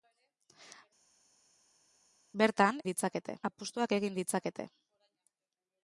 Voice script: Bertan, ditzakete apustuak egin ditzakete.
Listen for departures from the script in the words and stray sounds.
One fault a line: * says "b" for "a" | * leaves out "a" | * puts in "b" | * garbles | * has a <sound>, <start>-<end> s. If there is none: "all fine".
all fine